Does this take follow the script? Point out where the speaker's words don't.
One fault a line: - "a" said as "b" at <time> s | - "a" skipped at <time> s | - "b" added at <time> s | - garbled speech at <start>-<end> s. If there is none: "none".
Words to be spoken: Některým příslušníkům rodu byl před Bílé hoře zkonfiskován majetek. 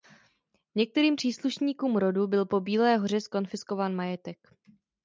- "před" said as "po" at 2.4 s